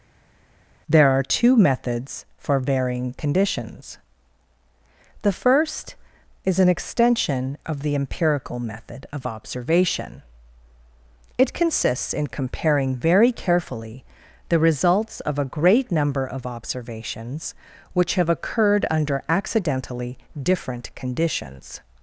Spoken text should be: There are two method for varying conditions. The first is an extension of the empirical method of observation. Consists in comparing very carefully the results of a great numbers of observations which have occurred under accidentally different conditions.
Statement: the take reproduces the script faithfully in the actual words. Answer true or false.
false